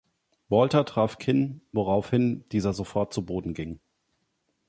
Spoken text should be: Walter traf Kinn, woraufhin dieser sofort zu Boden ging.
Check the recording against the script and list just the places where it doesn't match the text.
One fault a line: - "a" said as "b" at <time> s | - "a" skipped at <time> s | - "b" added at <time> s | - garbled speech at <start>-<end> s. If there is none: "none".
none